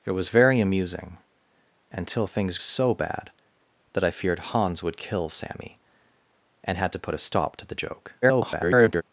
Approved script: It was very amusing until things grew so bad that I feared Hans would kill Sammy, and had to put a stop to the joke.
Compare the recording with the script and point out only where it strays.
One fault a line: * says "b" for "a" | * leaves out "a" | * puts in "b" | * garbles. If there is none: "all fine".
* leaves out "grew"
* garbles